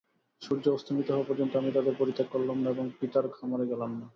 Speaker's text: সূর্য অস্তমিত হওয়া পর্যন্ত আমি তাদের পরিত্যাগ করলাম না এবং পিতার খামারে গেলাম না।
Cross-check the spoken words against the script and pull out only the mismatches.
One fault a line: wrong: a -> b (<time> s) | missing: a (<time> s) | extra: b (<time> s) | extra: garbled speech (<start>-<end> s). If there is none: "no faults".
no faults